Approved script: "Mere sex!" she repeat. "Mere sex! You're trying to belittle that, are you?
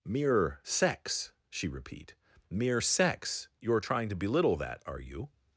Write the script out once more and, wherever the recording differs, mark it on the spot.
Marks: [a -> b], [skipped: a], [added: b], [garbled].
"Mere sex!" she repeat. "Mere sex! You're trying to belittle that, are you?